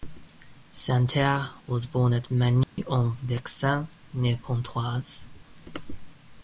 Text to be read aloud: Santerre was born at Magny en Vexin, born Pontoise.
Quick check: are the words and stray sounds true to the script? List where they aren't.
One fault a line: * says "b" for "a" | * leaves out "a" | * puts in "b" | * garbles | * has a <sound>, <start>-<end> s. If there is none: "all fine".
* has a dropout, 2.6-2.8 s
* says "near" for "born"